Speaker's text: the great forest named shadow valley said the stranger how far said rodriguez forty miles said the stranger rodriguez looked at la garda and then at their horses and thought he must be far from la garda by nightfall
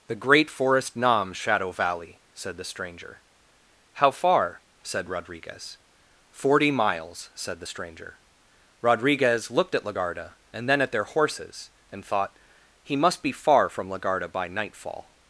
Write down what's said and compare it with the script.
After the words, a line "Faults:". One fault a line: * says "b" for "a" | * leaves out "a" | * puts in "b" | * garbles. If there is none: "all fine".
the great forest nam shadow valley said the stranger how far said rodriguez forty miles said the stranger rodriguez looked at la garda and then at their horses and thought he must be far from la garda by nightfall
Faults:
* says "nam" for "named"